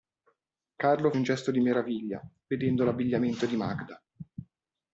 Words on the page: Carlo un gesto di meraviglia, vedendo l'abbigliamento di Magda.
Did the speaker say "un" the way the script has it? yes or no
yes